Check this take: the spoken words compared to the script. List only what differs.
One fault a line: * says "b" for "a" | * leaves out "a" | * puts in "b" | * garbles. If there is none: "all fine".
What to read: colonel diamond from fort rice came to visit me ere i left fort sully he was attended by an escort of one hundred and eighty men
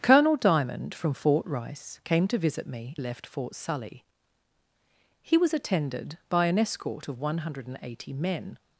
* leaves out "ere i"